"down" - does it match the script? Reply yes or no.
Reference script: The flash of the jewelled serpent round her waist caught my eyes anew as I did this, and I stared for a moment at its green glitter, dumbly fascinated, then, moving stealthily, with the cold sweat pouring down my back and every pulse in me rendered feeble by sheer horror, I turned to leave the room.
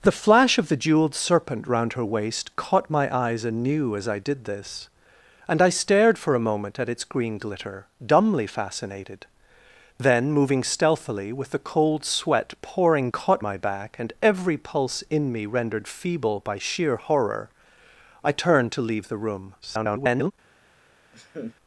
no